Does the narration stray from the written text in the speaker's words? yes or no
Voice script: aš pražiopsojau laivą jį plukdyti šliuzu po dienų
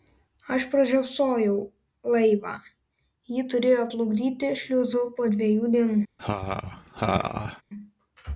yes